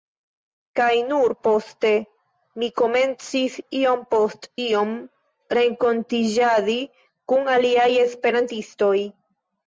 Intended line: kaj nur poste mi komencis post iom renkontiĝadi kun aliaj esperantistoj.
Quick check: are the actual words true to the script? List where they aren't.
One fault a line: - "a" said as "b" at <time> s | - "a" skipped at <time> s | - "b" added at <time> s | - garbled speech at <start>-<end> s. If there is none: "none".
- "iom" added at 3.8 s